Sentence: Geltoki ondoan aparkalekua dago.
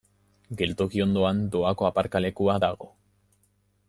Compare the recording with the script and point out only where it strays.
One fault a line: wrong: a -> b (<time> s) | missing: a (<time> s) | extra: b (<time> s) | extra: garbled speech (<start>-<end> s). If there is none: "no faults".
extra: doako (1.6 s)